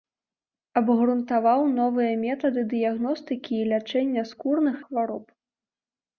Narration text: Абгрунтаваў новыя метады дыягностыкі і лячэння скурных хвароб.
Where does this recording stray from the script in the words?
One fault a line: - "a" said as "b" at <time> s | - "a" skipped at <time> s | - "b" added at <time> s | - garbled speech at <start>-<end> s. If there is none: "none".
none